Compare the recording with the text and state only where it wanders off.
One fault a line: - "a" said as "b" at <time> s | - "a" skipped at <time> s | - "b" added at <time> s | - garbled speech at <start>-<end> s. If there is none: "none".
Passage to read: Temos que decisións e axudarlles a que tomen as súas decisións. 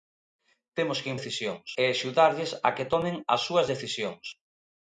none